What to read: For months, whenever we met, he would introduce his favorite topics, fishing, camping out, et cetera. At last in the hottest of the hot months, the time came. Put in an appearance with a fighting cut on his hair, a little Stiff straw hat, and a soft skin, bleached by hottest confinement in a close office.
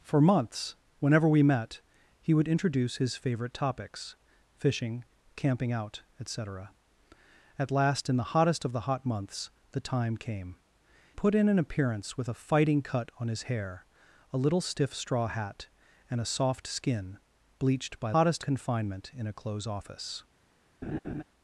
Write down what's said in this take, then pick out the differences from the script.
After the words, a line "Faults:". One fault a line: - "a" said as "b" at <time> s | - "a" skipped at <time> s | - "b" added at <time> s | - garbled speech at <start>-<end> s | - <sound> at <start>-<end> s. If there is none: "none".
For months, whenever we met, he would introduce his favorite topics, fishing, camping out, et cetera. At last in the hottest of the hot months, the time came. Put in an appearance with a fighting cut on his hair, a little Stiff straw hat, and a soft skin, bleached by hottest confinement in a close office.
Faults:
- laugh at 20.8-21.2 s